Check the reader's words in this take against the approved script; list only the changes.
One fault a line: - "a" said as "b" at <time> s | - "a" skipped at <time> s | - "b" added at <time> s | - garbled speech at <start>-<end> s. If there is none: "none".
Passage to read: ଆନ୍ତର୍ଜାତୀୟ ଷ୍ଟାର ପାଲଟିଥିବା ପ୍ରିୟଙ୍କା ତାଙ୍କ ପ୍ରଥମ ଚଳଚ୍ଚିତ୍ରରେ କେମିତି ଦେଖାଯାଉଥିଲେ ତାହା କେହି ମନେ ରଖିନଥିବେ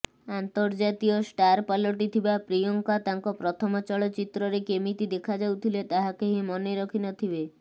none